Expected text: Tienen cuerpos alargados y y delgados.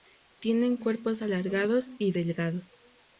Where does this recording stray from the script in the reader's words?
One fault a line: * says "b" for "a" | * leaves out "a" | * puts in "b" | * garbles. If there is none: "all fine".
* leaves out "y"